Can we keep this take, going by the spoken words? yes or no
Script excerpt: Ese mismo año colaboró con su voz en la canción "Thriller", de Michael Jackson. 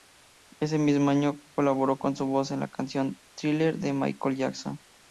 yes